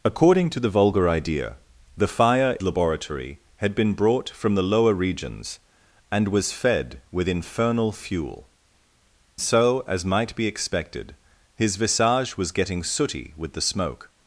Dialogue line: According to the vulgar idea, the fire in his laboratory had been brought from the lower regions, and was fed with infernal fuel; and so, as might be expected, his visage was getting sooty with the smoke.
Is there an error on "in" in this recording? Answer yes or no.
yes